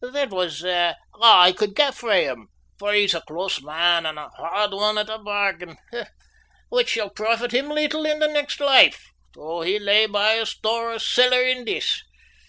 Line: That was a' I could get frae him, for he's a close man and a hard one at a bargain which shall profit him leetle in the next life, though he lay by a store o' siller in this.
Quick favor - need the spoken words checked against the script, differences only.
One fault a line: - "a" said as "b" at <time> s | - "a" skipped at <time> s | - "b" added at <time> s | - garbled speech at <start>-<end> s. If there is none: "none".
none